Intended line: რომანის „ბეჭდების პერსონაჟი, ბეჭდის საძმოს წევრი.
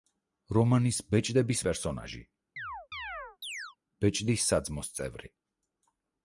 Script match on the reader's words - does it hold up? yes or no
yes